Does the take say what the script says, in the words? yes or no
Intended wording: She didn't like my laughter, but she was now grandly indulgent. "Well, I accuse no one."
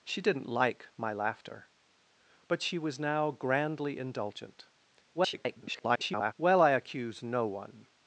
no